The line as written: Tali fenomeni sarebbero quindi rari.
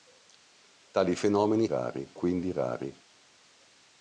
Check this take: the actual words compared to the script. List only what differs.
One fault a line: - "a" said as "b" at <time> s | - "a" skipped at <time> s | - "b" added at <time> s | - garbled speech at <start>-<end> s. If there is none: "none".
- "sarebbero" said as "rari" at 1.7 s